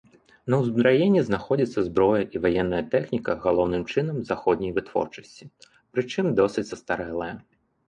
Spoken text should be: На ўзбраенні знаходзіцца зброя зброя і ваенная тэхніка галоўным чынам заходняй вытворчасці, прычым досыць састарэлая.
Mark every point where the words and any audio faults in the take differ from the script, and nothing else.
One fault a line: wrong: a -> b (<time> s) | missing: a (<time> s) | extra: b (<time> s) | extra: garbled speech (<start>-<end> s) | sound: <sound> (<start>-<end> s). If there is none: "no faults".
missing: зброя (2.2 s)